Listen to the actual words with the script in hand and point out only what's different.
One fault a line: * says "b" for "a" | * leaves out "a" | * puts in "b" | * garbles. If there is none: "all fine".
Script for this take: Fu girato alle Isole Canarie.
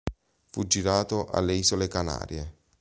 all fine